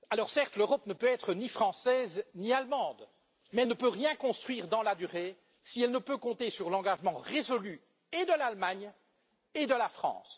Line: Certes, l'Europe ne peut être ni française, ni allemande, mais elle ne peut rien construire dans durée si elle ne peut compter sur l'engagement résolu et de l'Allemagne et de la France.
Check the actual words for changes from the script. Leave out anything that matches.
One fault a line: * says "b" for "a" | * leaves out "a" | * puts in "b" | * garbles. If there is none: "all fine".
* puts in "la"